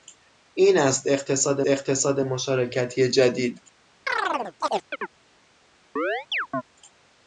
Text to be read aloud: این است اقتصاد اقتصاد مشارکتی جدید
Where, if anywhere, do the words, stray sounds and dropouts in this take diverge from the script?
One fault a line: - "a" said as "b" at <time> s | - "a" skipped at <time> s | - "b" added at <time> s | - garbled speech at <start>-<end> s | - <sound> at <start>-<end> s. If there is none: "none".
- chirp at 4.1-5.1 s
- chirp at 6.0-6.6 s